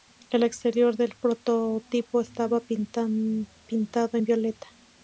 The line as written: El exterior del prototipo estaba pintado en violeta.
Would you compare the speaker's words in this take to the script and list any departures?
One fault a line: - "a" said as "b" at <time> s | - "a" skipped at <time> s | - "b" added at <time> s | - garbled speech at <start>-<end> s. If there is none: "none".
none